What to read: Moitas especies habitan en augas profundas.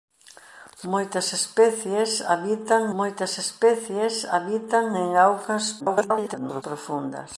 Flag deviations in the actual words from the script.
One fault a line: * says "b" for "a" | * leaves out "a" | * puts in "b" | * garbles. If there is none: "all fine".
* puts in "moitas especies habitan"
* garbles